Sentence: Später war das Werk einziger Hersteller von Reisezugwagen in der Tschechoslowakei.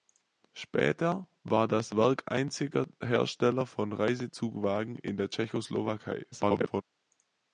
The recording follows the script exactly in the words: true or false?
false